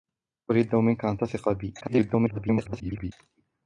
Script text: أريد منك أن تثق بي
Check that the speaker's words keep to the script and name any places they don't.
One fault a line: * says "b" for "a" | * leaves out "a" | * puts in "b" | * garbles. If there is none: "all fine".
* garbles